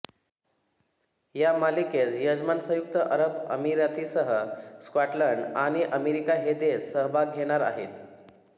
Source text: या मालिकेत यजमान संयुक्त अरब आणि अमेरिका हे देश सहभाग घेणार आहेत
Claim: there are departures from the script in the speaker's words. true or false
true